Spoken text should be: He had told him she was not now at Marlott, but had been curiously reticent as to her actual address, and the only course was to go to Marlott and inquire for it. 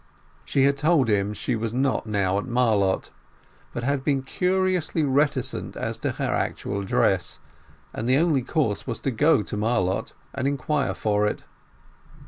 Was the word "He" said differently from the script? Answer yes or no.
yes